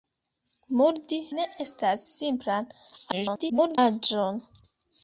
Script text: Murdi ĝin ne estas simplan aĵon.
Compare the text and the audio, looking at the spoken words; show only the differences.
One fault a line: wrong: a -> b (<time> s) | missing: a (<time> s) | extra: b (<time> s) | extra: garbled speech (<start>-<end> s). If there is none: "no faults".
missing: ĝin (1.2 s)
extra: garbled speech (3.1-3.8 s)